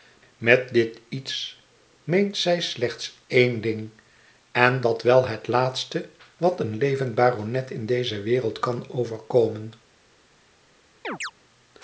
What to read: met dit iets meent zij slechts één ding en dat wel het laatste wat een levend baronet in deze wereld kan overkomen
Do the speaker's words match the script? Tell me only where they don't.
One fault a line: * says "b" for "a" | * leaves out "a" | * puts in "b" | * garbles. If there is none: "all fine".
all fine